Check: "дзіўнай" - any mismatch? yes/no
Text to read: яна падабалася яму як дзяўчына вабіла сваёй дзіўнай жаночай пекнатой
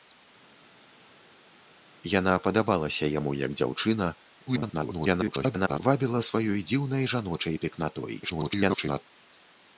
no